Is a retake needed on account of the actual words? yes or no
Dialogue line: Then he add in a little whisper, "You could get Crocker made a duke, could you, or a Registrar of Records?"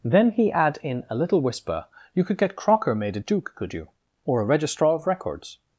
no